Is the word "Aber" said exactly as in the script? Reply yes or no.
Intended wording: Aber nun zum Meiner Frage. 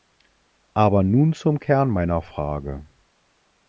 yes